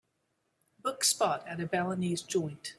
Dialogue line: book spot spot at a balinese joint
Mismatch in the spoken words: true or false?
true